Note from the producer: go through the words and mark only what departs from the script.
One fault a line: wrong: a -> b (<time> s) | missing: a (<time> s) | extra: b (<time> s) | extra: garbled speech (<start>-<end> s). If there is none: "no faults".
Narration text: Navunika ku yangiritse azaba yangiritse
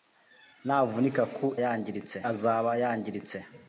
no faults